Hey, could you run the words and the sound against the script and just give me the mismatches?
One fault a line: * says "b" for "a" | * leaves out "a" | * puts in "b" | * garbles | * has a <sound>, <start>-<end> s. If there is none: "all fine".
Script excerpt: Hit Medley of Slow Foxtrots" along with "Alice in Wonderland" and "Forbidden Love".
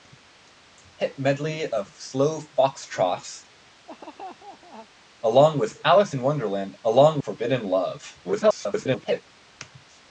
* has a laugh, 3.9-4.9 s
* says "along" for "and"
* garbles